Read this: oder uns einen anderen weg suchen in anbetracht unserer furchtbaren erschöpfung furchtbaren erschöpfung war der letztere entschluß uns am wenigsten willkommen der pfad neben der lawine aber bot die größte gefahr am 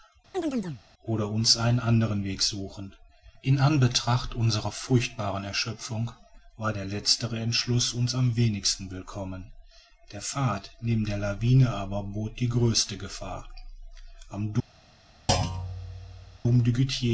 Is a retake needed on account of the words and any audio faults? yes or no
yes